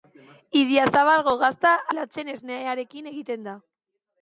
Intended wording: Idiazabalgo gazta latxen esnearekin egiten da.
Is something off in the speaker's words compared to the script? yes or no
no